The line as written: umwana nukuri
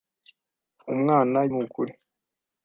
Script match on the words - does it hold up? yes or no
yes